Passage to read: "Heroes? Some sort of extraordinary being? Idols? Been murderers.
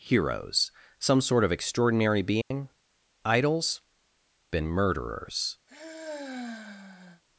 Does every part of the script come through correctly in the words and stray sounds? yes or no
no